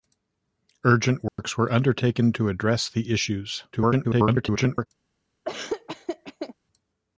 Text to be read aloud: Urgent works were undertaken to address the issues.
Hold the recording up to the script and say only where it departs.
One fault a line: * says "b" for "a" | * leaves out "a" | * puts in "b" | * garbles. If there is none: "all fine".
* garbles